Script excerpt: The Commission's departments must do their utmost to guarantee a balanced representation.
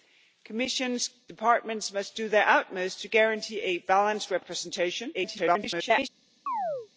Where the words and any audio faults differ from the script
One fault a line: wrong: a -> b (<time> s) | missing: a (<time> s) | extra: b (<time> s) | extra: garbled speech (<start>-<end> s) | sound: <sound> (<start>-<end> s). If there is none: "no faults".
extra: garbled speech (5.1-6.1 s)
sound: chirp (6.5-6.9 s)